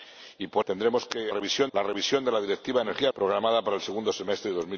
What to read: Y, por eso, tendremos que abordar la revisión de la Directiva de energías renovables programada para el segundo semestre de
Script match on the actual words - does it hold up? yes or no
no